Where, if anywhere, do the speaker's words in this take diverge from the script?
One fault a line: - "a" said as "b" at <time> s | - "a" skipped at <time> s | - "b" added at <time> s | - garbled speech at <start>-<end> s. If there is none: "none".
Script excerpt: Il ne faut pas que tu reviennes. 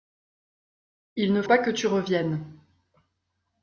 - "faut" skipped at 1.4 s